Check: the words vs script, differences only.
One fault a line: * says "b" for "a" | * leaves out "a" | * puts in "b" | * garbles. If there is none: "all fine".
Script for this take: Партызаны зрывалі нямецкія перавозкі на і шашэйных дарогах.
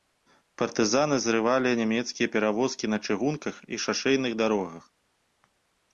* puts in "чыгунках"